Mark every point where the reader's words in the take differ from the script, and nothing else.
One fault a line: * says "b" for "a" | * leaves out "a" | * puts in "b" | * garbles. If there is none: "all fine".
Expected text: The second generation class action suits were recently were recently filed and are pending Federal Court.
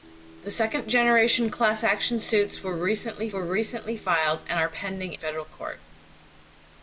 all fine